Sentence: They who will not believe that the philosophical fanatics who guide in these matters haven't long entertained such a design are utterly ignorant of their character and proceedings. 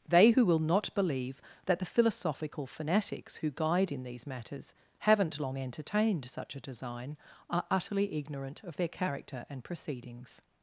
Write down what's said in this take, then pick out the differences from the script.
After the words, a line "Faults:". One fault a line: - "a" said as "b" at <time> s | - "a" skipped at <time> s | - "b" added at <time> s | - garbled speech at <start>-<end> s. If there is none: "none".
They who will not believe that the philosophical fanatics who guide in these matters haven't long entertained such a design are utterly ignorant of their character and proceedings.
Faults:
none